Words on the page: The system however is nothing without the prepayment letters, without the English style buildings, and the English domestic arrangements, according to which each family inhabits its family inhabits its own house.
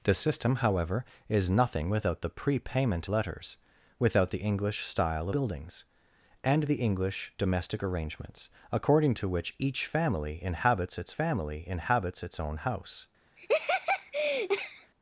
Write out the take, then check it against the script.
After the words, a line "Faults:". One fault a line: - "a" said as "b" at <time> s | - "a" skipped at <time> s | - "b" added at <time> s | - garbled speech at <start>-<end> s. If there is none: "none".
The system however is nothing without the prepayment letters, without the English style buildings, and the English domestic arrangements, according to which each family inhabits its family inhabits its own house.
Faults:
none